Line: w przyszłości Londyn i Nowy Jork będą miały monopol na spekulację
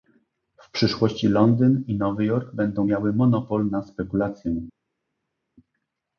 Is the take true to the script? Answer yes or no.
yes